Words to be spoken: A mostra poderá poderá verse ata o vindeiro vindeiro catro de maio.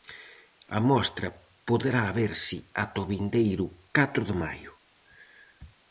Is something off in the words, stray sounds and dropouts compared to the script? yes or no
yes